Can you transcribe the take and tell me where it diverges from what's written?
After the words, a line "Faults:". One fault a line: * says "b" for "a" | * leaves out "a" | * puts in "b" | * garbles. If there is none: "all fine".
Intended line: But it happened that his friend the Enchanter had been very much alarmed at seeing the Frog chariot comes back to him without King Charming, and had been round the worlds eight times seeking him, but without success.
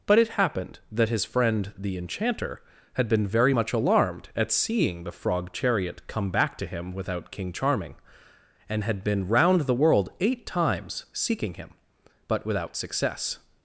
But it happened that his friend the Enchanter had been very much alarmed at seeing the Frog chariot come back to him without King Charming, and had been round the world eight times seeking him, but without success.
Faults:
* says "come" for "comes"
* says "world" for "worlds"